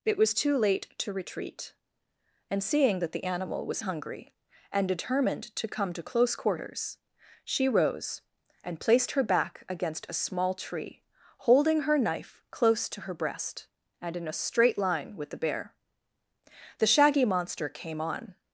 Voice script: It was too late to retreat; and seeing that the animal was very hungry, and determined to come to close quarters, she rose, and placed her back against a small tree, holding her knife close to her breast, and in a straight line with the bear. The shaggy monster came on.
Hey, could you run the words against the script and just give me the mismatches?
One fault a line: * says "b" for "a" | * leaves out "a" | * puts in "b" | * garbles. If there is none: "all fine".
* leaves out "very"